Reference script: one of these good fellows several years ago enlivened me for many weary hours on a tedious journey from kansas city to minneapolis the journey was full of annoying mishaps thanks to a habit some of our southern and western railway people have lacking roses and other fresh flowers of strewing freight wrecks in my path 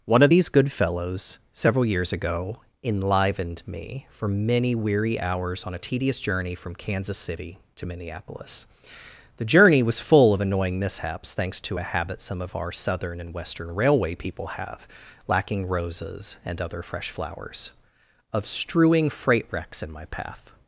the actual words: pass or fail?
pass